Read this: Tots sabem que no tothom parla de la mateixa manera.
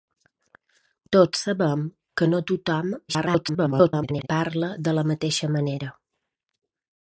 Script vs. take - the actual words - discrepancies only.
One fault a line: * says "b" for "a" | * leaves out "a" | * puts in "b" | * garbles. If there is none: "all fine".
* garbles